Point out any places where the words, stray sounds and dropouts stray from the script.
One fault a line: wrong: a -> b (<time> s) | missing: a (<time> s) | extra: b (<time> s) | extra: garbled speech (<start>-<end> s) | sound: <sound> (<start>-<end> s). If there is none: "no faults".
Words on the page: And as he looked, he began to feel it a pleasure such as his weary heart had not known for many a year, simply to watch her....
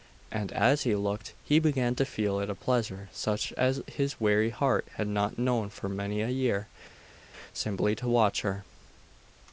no faults